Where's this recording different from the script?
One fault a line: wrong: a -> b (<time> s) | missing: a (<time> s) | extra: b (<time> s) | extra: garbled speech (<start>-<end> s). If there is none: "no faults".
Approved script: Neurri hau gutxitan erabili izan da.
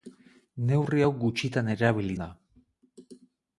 missing: izan (2.2 s)